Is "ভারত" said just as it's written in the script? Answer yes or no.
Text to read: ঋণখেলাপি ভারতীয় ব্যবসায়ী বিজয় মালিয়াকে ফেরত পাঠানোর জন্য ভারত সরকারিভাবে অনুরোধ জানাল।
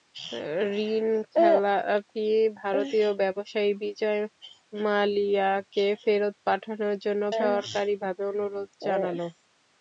no